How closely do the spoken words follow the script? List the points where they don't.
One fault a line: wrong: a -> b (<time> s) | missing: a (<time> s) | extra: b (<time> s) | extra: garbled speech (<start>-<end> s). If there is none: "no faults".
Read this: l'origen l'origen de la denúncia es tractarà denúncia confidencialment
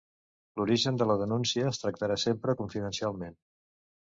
missing: l'origen (1.0 s)
wrong: denúncia -> sempre (2.2 s)